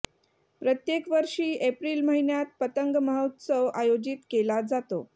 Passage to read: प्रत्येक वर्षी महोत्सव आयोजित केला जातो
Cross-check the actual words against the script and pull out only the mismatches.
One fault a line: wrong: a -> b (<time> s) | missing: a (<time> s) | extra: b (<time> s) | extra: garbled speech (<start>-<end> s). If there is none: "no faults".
extra: एप्रिल महिन्यात पतंग (1.7 s)